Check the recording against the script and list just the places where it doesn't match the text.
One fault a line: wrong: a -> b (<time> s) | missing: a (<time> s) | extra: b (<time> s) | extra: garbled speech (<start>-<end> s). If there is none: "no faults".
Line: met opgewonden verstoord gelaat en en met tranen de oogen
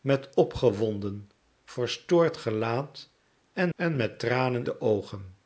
no faults